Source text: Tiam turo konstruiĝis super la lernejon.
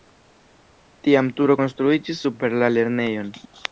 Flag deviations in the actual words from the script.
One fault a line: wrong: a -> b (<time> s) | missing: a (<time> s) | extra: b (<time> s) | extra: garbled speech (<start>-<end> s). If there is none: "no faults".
no faults